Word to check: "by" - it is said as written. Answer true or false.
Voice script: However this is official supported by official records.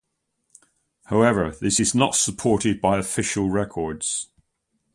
true